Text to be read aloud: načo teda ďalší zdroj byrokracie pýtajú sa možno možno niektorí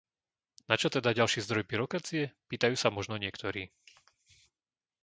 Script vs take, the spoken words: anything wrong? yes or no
yes